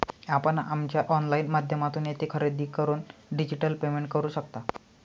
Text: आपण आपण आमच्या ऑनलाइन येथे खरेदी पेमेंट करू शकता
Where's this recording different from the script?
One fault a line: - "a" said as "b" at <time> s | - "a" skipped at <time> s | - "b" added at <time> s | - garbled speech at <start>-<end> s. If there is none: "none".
- "आपण" skipped at 0.6 s
- "माध्यमातून" added at 1.5 s
- "करून डिजिटल" added at 2.7 s